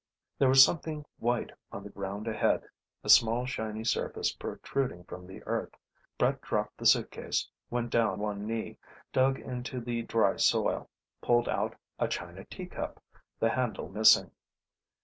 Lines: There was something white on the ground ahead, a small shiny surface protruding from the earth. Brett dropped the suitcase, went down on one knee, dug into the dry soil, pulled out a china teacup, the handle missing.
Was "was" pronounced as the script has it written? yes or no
yes